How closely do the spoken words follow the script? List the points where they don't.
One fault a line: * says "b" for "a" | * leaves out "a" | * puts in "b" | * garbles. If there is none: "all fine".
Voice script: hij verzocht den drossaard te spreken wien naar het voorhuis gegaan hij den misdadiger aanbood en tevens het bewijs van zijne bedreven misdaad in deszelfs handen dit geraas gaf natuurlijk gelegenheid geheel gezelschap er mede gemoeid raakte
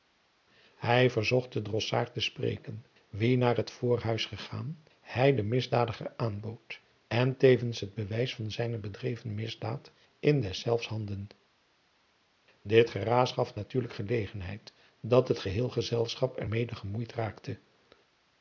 * puts in "dat het"